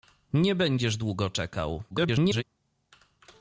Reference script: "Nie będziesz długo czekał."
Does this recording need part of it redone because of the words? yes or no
yes